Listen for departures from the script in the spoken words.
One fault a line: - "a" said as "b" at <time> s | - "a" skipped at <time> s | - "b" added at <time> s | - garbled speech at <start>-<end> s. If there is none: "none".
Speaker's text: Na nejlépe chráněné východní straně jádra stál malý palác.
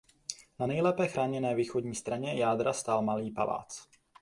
none